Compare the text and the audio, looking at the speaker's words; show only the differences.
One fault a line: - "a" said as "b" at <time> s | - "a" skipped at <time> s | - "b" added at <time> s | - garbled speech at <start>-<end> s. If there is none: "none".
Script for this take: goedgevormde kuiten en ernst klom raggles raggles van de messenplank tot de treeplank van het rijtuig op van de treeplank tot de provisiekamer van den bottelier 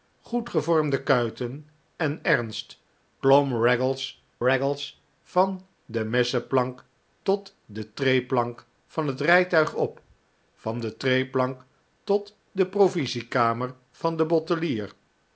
none